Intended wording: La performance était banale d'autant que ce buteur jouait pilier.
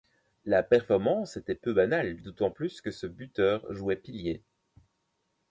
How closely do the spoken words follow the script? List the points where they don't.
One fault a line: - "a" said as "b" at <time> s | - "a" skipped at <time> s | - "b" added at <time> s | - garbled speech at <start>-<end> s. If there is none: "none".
- "peu" added at 1.5 s
- "plus" added at 2.5 s